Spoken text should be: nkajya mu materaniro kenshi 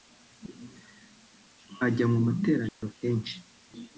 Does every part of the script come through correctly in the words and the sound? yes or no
no